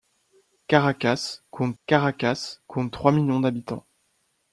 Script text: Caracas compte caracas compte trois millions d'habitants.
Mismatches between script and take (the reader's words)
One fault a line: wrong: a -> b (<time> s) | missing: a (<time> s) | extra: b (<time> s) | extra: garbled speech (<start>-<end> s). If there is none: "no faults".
no faults